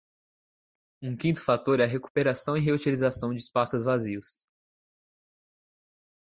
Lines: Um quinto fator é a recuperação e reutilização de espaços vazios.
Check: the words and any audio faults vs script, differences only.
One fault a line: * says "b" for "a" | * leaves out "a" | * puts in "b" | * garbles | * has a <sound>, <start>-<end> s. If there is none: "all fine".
all fine